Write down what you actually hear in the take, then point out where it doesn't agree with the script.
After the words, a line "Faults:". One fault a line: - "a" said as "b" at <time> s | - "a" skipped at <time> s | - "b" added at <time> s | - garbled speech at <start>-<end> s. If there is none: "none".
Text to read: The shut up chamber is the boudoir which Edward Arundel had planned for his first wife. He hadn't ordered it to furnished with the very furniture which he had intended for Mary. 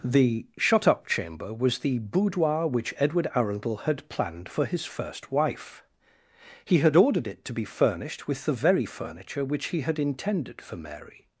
The shut up chamber was the boudoir which Edward Arundel had planned for his first wife. He had ordered it to be furnished with the very furniture which he had intended for Mary.
Faults:
- "is" said as "was" at 1.5 s
- "hadn't" said as "had" at 6.8 s
- "be" added at 7.5 s